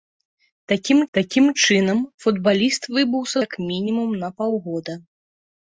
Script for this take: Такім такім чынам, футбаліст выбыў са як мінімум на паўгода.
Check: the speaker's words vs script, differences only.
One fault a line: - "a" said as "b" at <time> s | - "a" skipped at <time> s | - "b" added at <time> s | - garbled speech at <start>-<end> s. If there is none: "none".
none